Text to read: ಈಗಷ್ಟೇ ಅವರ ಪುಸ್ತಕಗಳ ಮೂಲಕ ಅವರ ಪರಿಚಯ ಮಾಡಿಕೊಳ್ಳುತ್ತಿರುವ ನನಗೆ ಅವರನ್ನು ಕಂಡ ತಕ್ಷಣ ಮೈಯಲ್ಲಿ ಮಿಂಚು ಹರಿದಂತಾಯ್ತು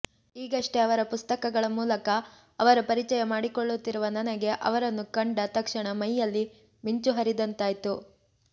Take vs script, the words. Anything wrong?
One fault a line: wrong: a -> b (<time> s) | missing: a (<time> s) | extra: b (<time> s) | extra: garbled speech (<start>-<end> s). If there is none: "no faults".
no faults